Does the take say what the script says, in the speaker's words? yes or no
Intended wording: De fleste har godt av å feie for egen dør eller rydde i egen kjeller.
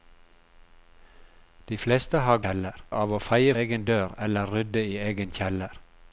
no